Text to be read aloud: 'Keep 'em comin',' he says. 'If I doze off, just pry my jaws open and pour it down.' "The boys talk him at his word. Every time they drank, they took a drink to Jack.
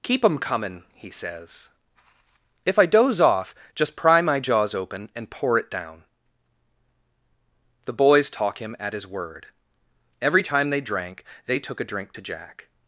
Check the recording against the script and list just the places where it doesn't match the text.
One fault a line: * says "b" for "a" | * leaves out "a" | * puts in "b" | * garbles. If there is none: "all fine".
all fine